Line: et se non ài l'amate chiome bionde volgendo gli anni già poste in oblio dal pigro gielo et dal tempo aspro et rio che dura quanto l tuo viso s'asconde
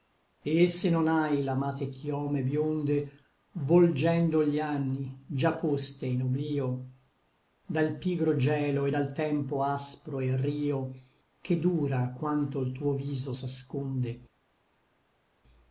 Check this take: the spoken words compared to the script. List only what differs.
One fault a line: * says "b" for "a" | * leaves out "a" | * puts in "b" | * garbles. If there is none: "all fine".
all fine